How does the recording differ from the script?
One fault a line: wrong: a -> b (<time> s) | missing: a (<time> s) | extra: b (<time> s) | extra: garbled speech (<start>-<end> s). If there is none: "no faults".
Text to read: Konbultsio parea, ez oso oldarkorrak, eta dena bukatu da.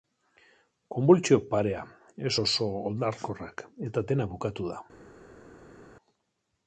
no faults